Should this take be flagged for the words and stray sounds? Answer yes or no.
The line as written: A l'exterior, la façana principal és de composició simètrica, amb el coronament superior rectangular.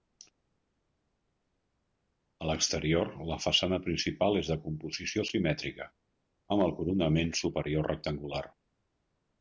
no